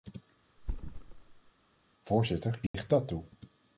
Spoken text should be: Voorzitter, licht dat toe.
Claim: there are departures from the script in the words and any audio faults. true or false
true